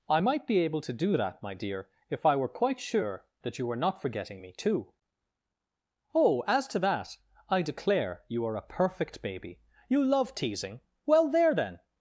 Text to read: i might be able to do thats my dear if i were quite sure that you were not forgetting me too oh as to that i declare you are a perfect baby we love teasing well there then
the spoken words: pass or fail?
fail